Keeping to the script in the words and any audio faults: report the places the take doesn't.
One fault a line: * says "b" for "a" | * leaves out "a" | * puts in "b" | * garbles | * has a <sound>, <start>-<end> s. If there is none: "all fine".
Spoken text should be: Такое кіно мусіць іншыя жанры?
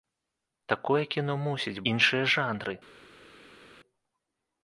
all fine